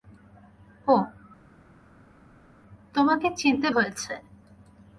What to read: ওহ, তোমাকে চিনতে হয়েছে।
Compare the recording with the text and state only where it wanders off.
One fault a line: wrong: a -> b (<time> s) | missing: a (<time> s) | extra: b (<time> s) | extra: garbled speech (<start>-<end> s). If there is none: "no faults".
no faults